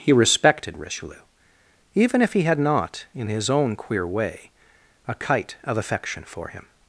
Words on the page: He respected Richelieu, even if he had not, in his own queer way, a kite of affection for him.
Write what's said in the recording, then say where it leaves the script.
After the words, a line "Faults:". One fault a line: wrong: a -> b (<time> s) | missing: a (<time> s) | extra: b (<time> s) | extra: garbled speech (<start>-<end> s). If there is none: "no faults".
He respected Richelieu, even if he had not, in his own queer way, a kite of affection for him.
Faults:
no faults